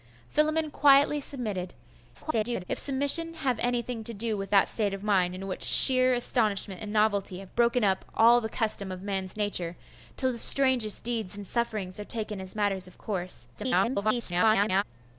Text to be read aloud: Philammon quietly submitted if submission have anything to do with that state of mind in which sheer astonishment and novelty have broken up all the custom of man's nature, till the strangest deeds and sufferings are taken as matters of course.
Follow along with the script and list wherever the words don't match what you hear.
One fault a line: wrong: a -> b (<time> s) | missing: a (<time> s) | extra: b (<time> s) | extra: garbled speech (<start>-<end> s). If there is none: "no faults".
extra: garbled speech (2.1-2.6 s)
extra: garbled speech (13.5-14.8 s)